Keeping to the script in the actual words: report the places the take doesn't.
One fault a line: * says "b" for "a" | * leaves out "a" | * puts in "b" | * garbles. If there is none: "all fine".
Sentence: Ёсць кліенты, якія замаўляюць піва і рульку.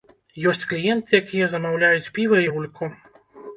all fine